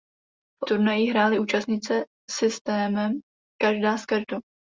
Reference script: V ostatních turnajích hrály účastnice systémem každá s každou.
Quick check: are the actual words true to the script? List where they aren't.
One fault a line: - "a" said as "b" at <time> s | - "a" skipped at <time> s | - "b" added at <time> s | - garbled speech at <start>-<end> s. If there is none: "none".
- "ostatních" skipped at 0.7 s